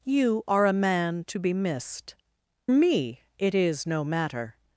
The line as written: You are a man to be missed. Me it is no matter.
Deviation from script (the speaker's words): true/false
false